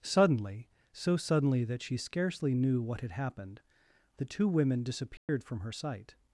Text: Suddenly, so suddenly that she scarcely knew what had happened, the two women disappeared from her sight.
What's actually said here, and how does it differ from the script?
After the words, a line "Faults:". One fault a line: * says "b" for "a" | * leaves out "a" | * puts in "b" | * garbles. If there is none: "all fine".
Suddenly, so suddenly that she scarcely knew what had happened, the two women disappeared from her sight.
Faults:
all fine